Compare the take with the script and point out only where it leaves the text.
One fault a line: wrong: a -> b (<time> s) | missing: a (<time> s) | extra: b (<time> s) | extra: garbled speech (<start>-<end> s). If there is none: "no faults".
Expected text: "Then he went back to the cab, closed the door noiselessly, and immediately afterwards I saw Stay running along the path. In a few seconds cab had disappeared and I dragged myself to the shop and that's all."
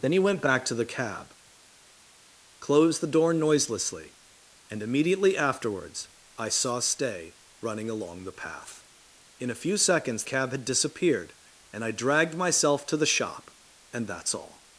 no faults